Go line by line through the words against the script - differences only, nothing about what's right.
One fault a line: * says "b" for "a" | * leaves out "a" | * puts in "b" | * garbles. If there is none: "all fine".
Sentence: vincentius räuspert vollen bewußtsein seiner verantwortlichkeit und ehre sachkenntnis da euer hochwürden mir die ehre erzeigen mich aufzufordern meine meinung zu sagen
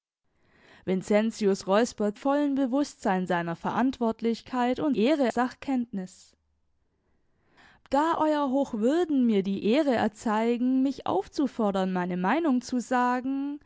all fine